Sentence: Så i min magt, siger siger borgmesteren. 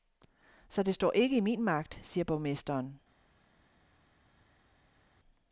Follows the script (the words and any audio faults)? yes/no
no